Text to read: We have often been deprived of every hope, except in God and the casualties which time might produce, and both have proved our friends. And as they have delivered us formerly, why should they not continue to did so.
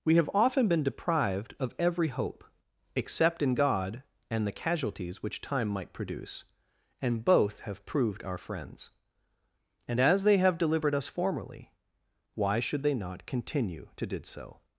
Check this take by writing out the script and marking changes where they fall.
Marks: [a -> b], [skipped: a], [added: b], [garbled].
We have often been deprived of every hope, except in God and the casualties which time might produce, and both have proved our friends. And as they have delivered us formerly, why should they not continue to did so.